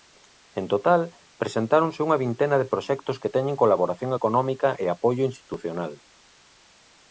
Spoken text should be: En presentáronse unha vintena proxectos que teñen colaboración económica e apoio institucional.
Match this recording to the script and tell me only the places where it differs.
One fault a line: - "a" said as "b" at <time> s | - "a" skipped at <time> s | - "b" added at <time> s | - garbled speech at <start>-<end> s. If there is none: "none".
- "total" added at 0.7 s
- "de" added at 2.6 s